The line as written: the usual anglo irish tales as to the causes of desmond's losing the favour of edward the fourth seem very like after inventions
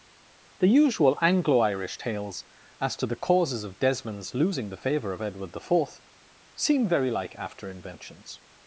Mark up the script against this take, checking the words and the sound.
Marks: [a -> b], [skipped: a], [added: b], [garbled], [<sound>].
the usual anglo irish tales as to the causes of desmond's losing the favour of edward the fourth seem very like after inventions